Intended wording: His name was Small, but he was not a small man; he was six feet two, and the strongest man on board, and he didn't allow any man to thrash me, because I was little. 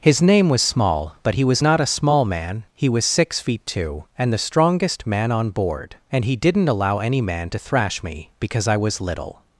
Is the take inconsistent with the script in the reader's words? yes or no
no